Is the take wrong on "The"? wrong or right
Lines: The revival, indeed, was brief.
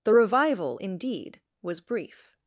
right